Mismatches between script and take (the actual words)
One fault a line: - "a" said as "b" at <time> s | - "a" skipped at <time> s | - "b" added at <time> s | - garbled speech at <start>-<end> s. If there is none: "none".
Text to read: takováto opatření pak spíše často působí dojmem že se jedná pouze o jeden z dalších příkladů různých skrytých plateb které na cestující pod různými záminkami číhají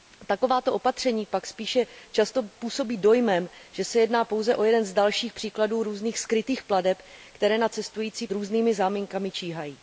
- "pod" skipped at 8.3 s